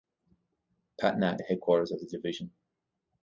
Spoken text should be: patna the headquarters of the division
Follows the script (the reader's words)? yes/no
yes